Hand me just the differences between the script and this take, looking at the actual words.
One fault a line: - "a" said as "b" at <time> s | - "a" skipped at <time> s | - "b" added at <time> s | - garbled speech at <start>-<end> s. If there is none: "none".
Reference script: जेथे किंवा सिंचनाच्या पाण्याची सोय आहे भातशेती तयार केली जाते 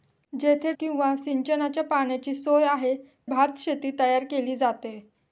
none